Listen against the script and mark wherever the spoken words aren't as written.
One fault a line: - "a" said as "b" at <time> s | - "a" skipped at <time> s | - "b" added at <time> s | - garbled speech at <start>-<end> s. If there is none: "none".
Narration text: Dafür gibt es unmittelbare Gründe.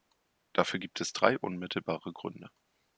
- "drei" added at 1.1 s